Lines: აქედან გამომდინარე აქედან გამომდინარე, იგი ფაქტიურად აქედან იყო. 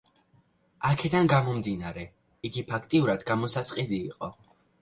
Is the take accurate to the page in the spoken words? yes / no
no